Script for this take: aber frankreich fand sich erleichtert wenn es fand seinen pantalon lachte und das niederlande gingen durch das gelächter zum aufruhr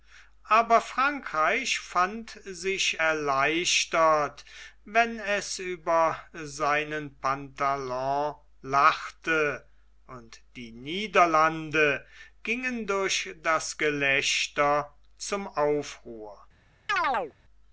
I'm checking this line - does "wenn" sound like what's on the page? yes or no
yes